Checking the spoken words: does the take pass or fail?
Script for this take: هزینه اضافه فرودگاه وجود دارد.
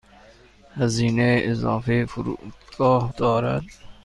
fail